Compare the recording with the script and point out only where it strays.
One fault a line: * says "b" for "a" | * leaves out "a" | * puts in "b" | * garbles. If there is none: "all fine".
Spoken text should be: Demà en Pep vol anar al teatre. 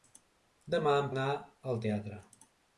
* leaves out "Pep vol"